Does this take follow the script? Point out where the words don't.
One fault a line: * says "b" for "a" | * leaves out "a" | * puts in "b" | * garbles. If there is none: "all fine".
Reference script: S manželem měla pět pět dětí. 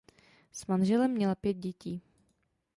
* leaves out "pět"